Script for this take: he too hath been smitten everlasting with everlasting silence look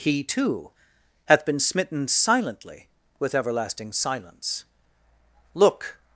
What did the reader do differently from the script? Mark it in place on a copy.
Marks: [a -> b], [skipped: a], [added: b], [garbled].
he too hath been smitten [everlasting -> silently] with everlasting silence look